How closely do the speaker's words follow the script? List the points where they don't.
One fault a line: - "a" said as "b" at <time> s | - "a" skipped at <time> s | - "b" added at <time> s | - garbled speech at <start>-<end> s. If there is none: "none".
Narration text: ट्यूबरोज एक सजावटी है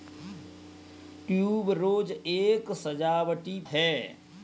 none